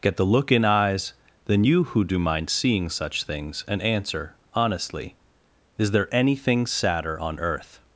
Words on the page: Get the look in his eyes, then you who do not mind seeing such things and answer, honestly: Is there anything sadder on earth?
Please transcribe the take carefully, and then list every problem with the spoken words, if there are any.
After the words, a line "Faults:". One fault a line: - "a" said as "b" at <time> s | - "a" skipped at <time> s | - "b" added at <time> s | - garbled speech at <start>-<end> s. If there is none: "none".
Get the look in eyes, then you who do mind seeing such things and answer, honestly: Is there anything sadder on earth?
Faults:
- "his" skipped at 0.7 s
- "not" skipped at 2.2 s